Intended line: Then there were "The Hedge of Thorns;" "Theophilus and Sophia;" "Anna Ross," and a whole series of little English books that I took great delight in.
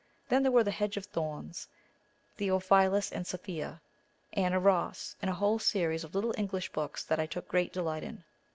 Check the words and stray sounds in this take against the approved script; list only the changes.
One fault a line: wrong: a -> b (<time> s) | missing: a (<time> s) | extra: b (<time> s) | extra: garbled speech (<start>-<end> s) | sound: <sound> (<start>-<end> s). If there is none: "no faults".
no faults